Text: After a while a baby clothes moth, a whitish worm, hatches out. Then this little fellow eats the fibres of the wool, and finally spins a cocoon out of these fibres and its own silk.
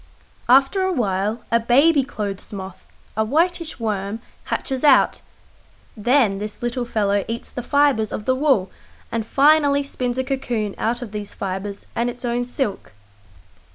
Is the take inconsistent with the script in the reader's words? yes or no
no